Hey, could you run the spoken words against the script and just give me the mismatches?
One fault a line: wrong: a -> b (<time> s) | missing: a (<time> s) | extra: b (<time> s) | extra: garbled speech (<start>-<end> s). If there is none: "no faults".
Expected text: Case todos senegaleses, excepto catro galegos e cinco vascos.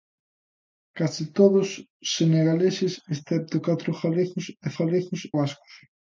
wrong: cinco -> galegos (4.8 s)